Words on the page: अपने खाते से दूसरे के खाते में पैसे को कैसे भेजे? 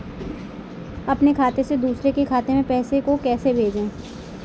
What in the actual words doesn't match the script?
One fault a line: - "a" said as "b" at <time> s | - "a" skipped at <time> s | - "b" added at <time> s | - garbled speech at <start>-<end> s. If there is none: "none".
none